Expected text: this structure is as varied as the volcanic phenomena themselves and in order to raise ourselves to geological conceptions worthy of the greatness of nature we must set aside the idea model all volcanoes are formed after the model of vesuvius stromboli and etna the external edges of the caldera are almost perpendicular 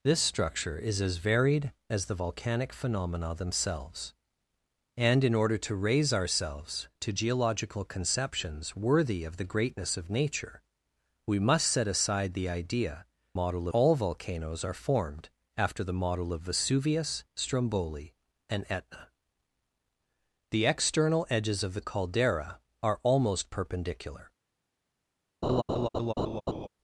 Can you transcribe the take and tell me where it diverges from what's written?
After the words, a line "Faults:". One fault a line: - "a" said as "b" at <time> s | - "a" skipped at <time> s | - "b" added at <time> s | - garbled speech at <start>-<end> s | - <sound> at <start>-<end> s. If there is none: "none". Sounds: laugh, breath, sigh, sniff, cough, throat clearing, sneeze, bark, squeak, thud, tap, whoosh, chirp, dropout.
this structure is as varied as the volcanic phenomena themselves and in order to raise ourselves to geological conceptions worthy of the greatness of nature we must set aside the idea model all volcanoes are formed after the model of vesuvius stromboli and etna the external edges of the caldera are almost perpendicular
Faults:
- laugh at 25.4-26.7 s